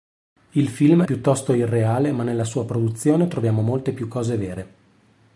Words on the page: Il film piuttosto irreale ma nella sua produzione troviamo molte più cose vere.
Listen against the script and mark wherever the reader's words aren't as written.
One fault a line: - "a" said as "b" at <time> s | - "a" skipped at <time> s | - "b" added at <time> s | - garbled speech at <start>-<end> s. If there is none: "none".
none